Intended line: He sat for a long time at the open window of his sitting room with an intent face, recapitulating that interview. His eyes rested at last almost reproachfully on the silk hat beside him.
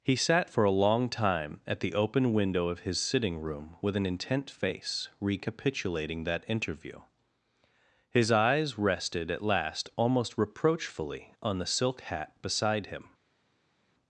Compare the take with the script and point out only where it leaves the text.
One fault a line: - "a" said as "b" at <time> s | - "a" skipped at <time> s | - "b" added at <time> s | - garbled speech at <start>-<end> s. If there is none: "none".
none